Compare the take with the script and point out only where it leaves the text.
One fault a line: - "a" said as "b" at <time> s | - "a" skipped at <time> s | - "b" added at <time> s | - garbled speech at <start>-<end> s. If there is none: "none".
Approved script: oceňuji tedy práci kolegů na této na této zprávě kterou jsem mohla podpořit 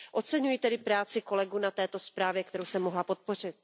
- "na této" skipped at 2.0 s